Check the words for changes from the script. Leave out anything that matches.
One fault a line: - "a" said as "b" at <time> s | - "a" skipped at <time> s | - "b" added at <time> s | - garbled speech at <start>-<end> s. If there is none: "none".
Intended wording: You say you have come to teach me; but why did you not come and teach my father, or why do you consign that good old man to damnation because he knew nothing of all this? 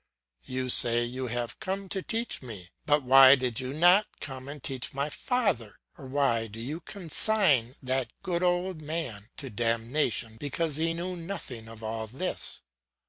none